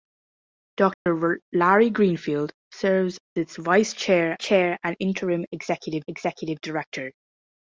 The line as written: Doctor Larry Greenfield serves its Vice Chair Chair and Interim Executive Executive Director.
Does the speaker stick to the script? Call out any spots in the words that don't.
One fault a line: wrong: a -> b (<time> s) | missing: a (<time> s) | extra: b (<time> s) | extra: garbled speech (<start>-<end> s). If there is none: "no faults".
no faults